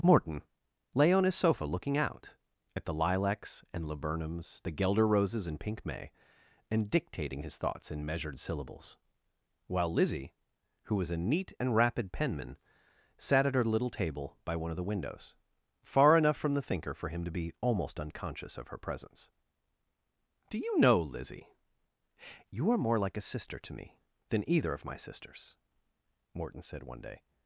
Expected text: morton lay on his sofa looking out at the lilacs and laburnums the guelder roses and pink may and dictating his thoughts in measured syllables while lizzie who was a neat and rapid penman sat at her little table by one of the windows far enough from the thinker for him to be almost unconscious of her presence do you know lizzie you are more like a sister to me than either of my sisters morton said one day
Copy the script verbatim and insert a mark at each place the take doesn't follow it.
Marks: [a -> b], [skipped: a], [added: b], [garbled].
morton lay on his sofa looking out at the lilacs and laburnums the guelder roses and pink may and dictating his thoughts in measured syllables while lizzie who was a neat and rapid penman sat at her little table by one of the windows far enough from the thinker for him to be almost unconscious of her presence do you know lizzie you are more like a sister to me than either of my sisters morton said one day